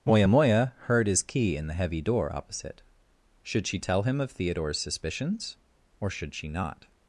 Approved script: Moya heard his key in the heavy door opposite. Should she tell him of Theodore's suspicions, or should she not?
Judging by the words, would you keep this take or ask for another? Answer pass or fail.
fail